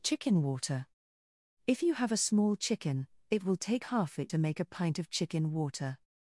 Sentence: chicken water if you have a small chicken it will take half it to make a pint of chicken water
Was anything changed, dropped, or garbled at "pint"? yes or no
no